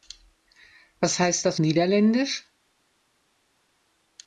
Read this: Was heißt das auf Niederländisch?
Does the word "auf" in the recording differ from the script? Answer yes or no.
yes